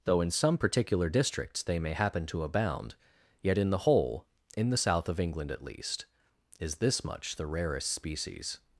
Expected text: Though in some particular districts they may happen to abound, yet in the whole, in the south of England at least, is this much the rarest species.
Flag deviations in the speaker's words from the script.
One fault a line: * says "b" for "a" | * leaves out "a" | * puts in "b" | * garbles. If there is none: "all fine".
all fine